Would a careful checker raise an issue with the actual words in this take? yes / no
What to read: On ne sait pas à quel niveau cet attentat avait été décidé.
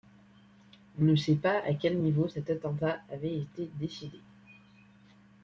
no